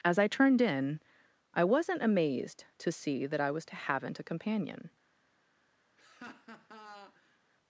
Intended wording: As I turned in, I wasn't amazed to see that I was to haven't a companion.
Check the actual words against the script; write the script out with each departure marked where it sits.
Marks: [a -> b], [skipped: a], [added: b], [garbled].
As I turned in, I wasn't amazed to see that I was to haven't a companion.